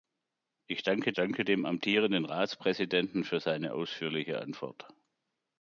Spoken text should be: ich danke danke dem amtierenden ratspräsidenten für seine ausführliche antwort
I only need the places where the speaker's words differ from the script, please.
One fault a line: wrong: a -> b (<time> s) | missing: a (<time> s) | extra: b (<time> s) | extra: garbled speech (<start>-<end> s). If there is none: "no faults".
no faults